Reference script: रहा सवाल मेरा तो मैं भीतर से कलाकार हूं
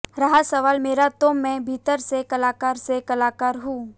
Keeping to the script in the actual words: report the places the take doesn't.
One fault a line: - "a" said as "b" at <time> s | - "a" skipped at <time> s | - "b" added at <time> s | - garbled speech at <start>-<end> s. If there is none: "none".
- "से कलाकार" added at 2.8 s